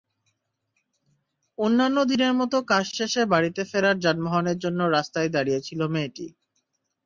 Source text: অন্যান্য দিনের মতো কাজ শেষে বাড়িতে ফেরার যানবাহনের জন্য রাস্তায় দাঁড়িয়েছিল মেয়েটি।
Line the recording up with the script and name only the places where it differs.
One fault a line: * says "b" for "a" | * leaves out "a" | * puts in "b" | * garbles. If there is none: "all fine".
all fine